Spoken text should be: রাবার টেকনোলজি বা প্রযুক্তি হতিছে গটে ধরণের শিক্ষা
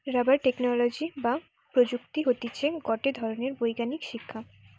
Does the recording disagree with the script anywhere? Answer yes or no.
yes